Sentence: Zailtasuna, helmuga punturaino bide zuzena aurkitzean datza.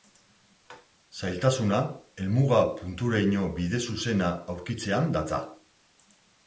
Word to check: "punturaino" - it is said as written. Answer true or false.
true